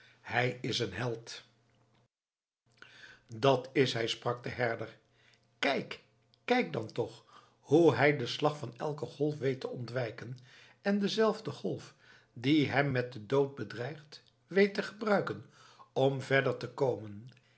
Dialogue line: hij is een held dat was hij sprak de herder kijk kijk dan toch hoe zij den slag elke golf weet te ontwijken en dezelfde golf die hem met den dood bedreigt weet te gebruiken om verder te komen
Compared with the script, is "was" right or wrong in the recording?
wrong